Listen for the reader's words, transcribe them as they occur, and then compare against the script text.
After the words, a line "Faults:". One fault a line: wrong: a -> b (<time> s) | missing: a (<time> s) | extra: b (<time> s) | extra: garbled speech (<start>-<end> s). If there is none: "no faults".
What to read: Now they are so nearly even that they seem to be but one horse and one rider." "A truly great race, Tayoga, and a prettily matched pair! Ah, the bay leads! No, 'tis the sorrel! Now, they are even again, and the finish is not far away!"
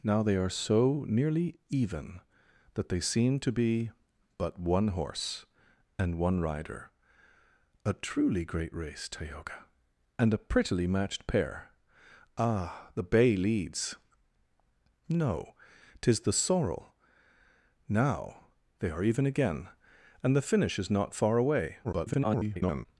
Now they are so nearly even that they seem to be but one horse and one rider." "A truly great race, Tayoga, and a prettily matched pair! Ah, the bay leads! No, 'tis the sorrel! Now, they are even again, and the finish is not far away!" [garbled]
Faults:
extra: garbled speech (21.8-22.9 s)